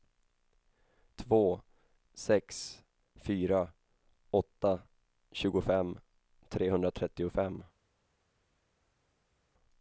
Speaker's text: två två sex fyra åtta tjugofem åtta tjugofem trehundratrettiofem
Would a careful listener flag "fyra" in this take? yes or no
no